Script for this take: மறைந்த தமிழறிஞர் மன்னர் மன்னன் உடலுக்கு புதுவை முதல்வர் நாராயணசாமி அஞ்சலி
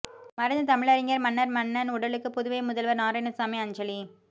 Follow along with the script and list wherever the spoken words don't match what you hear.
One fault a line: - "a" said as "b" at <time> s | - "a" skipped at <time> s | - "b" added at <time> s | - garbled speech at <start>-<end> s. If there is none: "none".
none